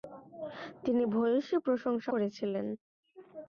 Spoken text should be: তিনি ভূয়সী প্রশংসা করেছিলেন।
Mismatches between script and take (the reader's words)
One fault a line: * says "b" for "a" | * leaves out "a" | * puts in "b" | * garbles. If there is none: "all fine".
all fine